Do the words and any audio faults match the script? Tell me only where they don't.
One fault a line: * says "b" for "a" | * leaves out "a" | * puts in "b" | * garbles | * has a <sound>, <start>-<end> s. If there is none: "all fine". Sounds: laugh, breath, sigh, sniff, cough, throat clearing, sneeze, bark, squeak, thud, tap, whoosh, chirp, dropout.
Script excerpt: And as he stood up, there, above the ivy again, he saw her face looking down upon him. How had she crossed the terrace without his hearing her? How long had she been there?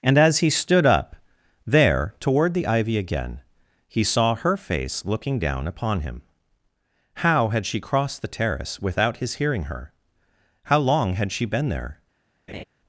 * says "toward" for "above"
* has a laugh, 12.5-12.6 s